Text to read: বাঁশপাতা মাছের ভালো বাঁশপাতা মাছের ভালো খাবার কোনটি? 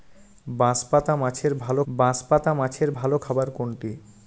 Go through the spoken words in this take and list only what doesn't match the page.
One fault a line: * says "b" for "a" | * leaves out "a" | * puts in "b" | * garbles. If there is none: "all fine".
all fine